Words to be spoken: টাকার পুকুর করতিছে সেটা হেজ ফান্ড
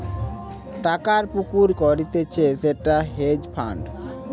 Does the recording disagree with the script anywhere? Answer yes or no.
no